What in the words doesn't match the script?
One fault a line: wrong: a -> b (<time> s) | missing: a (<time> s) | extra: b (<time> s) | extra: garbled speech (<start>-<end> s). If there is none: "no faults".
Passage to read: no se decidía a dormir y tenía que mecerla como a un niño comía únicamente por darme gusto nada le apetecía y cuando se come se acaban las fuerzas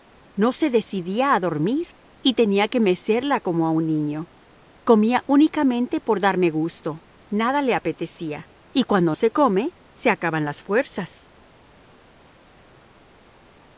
no faults